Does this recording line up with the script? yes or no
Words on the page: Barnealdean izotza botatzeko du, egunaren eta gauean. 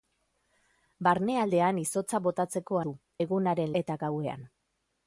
yes